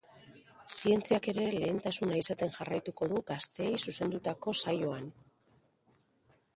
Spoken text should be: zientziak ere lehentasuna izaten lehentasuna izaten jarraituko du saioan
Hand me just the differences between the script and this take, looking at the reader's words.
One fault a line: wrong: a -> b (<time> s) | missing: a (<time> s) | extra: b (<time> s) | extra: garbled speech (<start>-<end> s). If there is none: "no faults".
wrong: lehentasuna izaten jarraituko du -> jarraituko du gazteei zuzendutako (2.6 s)